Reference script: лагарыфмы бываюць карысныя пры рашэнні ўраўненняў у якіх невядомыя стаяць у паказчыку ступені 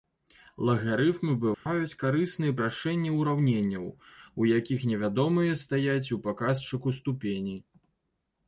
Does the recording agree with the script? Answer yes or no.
no